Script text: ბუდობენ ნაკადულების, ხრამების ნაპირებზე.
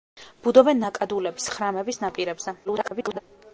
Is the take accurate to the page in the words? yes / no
no